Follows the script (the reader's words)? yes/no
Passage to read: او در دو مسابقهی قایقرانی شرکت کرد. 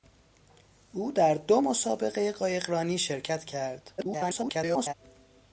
no